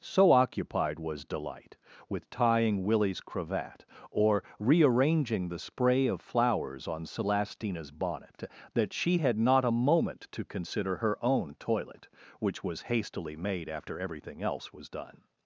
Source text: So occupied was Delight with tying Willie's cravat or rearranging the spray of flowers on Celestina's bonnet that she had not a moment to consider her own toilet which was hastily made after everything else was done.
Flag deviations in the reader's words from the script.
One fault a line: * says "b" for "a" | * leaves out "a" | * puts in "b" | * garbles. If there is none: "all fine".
all fine